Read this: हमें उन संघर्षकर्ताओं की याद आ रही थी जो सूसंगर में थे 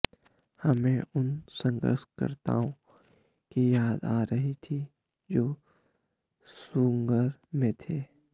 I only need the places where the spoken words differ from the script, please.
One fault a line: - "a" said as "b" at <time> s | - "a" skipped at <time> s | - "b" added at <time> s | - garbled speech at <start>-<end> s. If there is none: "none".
none